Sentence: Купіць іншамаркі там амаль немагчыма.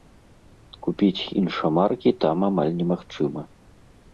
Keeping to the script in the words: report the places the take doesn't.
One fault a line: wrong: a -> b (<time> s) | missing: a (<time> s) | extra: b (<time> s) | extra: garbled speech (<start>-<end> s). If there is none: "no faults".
no faults